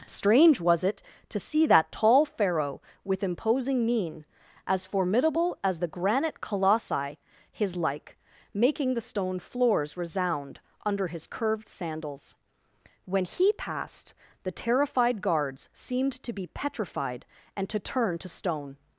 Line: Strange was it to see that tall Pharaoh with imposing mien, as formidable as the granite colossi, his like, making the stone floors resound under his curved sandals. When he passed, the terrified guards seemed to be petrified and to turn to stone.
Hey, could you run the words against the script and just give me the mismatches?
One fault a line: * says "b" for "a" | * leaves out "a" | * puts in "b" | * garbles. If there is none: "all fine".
all fine